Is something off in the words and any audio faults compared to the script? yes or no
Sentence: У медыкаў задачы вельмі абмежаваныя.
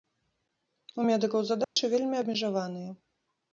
yes